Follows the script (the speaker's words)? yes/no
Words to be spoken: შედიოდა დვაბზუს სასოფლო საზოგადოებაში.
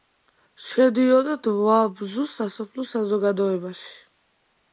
yes